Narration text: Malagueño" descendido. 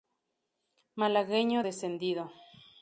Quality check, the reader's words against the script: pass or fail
pass